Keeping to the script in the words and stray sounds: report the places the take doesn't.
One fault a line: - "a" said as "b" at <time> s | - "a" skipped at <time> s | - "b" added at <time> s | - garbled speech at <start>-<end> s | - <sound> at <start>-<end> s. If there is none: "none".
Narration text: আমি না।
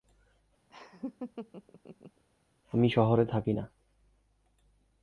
- laugh at 0.7-2.2 s
- "শহরে থাকি" added at 2.9 s